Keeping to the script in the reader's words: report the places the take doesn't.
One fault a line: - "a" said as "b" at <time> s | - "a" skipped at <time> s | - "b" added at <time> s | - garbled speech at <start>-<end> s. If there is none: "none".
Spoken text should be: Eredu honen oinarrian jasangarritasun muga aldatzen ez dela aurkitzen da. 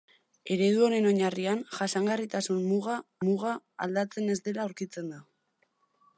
- "muga" added at 3.3 s